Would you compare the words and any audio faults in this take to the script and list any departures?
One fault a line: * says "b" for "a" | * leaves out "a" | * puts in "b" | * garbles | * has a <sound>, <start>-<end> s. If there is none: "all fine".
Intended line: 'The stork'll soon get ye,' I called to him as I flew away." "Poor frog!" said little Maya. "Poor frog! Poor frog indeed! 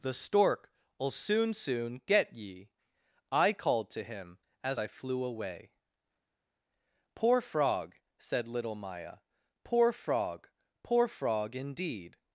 * puts in "soon"